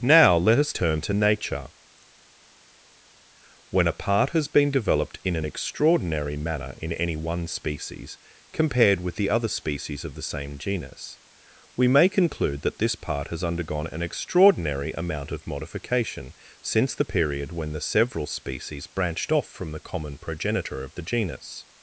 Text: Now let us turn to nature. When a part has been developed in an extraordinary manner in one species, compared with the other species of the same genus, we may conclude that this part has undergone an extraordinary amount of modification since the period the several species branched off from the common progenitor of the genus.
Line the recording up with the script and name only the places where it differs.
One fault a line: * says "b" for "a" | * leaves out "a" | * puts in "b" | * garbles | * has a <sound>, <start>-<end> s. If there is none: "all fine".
* puts in "any"
* puts in "when"